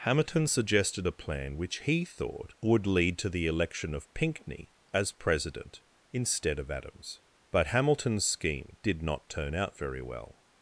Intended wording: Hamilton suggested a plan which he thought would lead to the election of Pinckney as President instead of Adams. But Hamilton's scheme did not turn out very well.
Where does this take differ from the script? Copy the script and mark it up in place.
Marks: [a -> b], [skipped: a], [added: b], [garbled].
Hamilton suggested a plan which he thought would lead to the election of Pinckney as President instead of Adams. But Hamilton's scheme did not turn out very well.